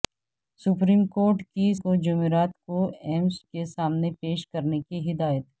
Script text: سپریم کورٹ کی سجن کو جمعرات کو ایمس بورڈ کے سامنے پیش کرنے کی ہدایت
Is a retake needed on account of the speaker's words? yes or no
yes